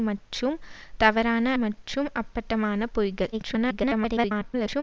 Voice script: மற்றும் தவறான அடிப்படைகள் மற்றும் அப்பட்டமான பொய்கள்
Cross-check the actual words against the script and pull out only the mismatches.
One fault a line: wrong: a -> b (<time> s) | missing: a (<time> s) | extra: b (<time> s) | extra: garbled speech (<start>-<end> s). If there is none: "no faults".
missing: அடிப்படைகள் (1.5 s)
extra: garbled speech (3.3-4.8 s)